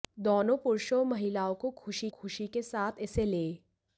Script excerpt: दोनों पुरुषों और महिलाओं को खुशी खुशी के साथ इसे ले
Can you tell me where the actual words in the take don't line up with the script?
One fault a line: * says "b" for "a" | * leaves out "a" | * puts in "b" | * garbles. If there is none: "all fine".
all fine